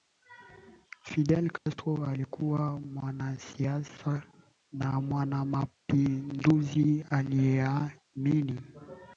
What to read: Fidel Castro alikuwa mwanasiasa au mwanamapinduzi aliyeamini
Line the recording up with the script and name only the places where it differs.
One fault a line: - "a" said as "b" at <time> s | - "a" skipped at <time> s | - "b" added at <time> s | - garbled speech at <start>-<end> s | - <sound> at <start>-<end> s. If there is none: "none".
- dropout at 1.6-1.7 s
- "au" said as "na" at 4.7 s